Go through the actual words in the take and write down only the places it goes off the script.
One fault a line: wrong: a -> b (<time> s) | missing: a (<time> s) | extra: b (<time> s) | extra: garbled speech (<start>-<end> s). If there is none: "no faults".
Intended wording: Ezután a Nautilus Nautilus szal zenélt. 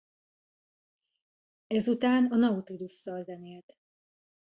missing: Nautilus (2.9 s)